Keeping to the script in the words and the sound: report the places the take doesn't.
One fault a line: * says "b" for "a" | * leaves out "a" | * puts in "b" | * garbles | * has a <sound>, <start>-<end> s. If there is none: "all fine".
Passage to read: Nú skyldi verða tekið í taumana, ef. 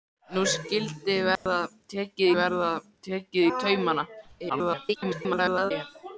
* has a dropout, 1.4-1.5 s
* puts in "verða tekið"
* garbles